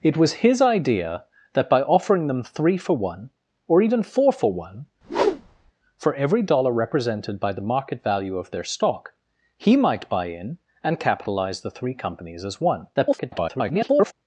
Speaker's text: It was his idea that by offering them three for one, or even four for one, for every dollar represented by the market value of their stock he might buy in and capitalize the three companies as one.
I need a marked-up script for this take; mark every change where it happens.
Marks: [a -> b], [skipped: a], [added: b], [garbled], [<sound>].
It was his idea that by offering them three for one, or even four for one, [whoosh] for every dollar represented by the market value of their stock he might buy in and capitalize the three companies as one. [garbled]